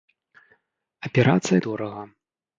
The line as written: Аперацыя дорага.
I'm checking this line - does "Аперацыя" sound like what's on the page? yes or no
yes